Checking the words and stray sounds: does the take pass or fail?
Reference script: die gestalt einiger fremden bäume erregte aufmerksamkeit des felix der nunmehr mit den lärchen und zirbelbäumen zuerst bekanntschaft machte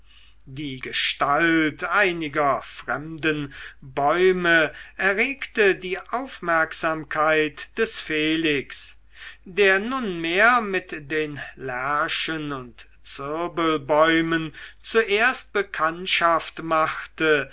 fail